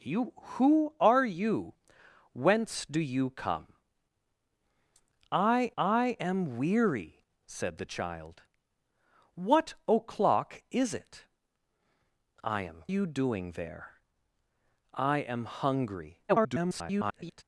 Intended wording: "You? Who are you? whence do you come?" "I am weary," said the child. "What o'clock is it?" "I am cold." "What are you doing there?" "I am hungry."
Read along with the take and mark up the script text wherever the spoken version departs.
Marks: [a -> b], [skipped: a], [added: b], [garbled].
"You? Who are you? whence do you come?" "I [added: I] am weary," said the child. "What o'clock is it?" "I am [skipped: cold." "What are] you doing there?" "I am hungry." [garbled]